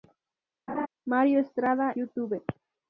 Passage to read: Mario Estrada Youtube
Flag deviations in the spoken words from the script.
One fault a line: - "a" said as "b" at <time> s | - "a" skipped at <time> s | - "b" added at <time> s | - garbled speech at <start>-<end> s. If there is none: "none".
none